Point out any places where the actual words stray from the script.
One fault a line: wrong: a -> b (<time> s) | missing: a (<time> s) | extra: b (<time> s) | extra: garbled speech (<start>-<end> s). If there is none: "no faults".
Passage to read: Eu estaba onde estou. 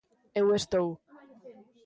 missing: estaba onde (0.5 s)